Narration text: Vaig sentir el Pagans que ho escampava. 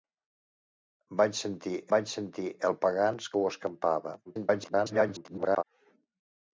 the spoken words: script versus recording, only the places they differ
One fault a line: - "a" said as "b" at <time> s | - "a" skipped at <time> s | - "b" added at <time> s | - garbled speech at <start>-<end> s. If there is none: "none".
- "vaig sentir" added at 1.9 s
- garbled speech at 4.2-5.6 s